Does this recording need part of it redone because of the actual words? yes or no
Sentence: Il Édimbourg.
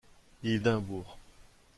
no